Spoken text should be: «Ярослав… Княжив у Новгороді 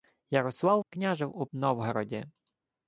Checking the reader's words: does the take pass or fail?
pass